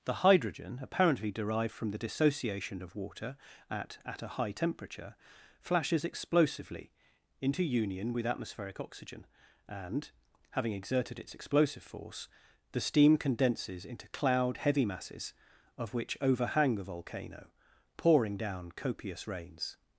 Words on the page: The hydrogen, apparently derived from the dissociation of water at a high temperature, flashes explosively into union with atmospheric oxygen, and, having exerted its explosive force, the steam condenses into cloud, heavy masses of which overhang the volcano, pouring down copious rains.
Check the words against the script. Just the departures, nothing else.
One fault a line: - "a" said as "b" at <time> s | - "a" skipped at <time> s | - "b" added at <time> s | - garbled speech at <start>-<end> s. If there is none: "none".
- "at" added at 4.0 s